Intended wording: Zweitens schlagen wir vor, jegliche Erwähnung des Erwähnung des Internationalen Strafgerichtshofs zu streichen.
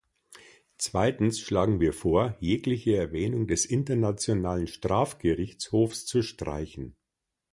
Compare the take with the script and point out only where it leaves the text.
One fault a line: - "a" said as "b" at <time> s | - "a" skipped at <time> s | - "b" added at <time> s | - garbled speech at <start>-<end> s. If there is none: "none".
- "Erwähnung des" skipped at 3.6 s